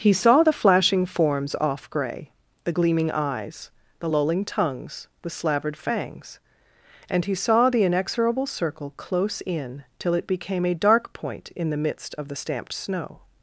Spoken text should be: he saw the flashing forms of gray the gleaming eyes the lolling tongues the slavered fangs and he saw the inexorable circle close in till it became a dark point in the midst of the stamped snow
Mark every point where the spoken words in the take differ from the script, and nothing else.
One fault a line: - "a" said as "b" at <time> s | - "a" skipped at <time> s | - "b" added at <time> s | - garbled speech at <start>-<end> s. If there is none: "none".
- "of" said as "off" at 1.6 s